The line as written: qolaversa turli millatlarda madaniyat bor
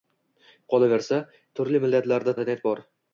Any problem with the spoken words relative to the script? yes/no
no